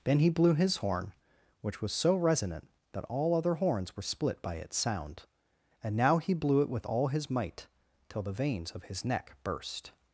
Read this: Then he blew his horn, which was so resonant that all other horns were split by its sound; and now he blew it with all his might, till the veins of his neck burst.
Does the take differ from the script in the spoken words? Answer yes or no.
no